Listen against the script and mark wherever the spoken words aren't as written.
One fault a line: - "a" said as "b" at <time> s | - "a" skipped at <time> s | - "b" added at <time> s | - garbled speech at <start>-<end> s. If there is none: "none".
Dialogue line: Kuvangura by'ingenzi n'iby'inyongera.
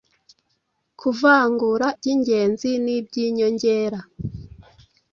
none